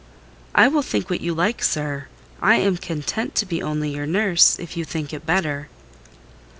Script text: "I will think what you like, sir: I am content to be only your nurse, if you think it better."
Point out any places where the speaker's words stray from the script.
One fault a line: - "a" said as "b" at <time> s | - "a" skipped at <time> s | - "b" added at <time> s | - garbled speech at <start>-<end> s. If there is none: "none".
none